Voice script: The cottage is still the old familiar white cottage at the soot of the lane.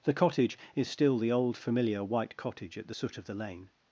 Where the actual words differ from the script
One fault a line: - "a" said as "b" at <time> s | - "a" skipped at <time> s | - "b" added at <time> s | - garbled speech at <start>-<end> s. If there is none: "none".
none